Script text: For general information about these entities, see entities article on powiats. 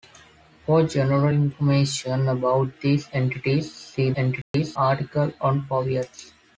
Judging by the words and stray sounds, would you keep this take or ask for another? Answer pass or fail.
fail